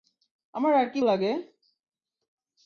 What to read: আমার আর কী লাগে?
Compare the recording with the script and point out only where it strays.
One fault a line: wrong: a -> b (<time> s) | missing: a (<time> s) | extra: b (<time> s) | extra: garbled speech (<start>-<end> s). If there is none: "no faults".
no faults